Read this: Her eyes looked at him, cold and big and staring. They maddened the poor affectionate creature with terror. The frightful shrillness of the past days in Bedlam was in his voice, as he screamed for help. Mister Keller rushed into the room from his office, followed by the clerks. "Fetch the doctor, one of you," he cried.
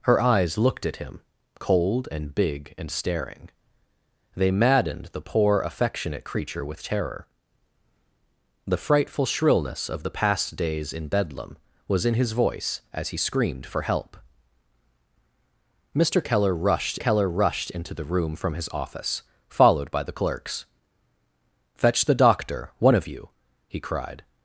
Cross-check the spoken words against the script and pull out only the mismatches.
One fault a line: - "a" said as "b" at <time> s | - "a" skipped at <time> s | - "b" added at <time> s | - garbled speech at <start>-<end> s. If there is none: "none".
- "Keller rushed" added at 17.0 s